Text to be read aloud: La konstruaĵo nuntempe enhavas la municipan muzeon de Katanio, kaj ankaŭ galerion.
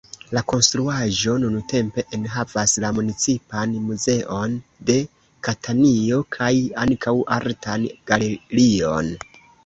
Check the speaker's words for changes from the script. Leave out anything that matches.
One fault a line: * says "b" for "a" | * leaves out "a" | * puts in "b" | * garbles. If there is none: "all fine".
* puts in "artan"